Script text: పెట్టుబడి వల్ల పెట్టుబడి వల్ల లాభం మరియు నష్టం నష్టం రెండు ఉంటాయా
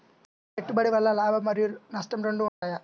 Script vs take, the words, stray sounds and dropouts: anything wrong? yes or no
yes